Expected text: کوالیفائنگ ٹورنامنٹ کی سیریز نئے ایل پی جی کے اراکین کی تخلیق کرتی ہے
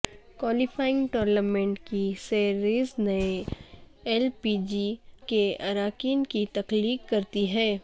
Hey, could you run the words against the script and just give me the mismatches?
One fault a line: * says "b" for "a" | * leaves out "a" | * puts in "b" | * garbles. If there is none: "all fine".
all fine